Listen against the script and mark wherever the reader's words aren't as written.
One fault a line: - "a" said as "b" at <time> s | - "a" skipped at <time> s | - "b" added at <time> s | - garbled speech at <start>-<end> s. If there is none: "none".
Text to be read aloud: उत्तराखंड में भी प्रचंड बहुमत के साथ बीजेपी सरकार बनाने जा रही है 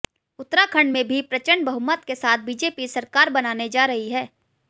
none